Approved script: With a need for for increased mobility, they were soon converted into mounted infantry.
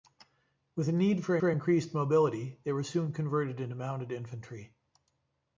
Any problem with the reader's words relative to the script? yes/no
no